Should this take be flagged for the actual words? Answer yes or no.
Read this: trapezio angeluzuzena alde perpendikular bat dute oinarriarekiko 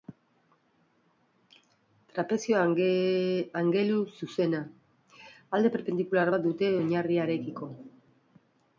no